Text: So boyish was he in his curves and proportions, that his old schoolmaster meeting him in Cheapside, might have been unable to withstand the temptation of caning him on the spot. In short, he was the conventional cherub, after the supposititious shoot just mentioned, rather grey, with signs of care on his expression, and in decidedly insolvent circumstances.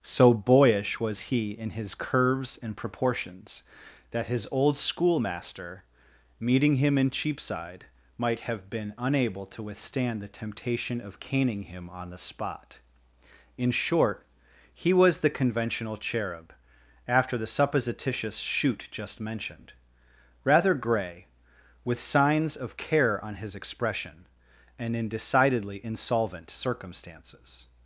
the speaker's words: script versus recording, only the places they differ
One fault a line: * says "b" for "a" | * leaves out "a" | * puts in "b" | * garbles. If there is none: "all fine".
all fine